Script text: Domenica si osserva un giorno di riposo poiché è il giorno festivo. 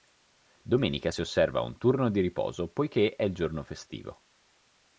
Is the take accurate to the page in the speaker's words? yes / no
no